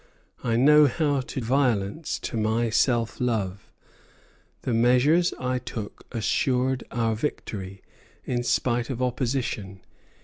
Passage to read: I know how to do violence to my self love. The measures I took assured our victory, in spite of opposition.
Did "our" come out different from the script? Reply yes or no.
no